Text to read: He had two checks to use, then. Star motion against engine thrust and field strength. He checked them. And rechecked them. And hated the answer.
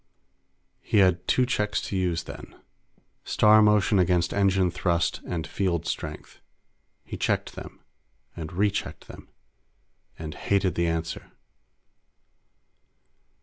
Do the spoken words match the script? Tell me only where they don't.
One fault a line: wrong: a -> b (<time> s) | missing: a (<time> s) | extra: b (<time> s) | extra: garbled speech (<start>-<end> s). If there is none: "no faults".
no faults